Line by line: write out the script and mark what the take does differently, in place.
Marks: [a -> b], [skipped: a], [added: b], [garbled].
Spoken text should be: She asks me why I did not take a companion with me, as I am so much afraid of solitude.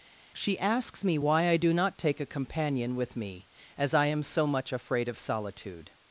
She asks me why I [did -> do] not take a companion with me, as I am so much afraid of solitude.